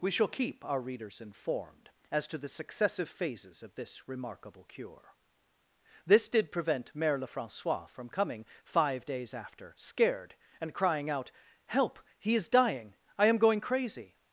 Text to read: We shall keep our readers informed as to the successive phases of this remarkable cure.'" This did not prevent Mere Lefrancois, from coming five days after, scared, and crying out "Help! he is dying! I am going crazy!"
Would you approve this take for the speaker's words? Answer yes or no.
no